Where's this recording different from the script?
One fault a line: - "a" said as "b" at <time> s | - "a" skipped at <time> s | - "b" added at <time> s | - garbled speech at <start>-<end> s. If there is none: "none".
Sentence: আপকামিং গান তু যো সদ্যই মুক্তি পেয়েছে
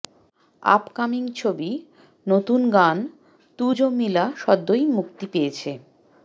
- "ছবি নতুন" added at 1.4 s
- "মিলা" added at 4.0 s